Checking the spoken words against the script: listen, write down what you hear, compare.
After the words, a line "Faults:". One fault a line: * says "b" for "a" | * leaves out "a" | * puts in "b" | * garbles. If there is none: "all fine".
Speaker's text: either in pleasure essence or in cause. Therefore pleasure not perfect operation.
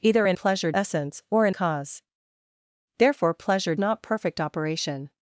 either in pleasure essence or in cause. Therefore pleasure not perfect operation.
Faults:
all fine